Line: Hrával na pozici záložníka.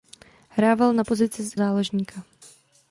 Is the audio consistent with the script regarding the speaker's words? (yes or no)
yes